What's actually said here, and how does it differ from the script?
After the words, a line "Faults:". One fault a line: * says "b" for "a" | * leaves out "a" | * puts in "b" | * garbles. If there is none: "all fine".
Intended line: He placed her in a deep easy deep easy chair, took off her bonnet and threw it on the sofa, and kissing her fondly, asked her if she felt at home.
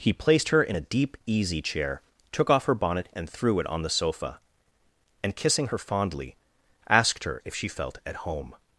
He placed her in a deep easy chair, took off her bonnet and threw it on the sofa, and kissing her fondly, asked her if she felt at home.
Faults:
* leaves out "deep easy"